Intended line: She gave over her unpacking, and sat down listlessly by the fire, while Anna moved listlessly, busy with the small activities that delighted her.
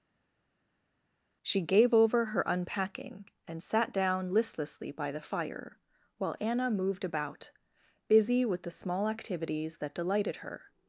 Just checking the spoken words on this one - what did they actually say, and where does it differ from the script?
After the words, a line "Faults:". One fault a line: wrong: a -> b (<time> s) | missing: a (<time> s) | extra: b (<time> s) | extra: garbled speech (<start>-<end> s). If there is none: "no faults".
She gave over her unpacking, and sat down listlessly by the fire, while Anna moved about, busy with the small activities that delighted her.
Faults:
wrong: listlessly -> about (7.0 s)